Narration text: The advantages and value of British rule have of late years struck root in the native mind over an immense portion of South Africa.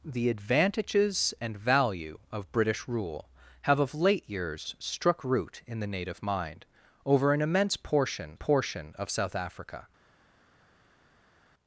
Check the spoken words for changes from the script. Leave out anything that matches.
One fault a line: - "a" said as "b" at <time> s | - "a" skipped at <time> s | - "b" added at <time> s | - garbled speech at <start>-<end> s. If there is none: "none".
- "portion" added at 8.3 s